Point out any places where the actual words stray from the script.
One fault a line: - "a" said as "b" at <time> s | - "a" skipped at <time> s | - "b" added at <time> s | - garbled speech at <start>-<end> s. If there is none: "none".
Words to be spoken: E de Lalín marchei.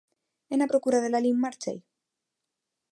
- "na procura" added at 0.6 s